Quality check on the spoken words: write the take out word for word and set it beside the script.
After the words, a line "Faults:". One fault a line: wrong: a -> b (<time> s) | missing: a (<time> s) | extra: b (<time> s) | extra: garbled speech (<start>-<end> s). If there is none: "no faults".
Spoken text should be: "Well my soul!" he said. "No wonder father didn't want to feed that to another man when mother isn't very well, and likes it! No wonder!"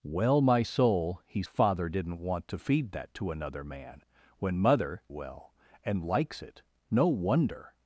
"Well my soul!" he father didn't want to feed that to another man when mother well, and likes it! No wonder!"
Faults:
missing: said No wonder (1.4 s)
missing: isn't very (5.0 s)